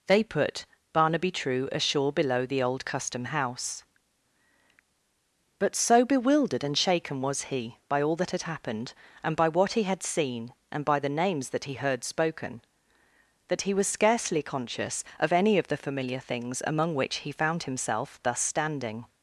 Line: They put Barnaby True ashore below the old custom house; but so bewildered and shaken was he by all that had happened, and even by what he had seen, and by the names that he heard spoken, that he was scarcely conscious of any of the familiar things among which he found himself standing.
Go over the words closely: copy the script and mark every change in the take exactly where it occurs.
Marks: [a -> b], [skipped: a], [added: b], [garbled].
They put Barnaby True ashore below the old custom house; but so bewildered and shaken was he by all that had happened, and [skipped: even] by what he had seen, and by the names that he heard spoken, that he was scarcely conscious of any of the familiar things among which he found himself [added: thus] standing.